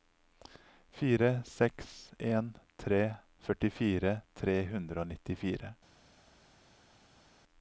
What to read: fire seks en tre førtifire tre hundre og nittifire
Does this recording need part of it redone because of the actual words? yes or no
no